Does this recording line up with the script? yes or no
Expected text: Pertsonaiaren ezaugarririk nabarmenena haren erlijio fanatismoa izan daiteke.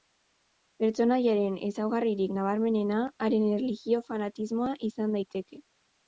yes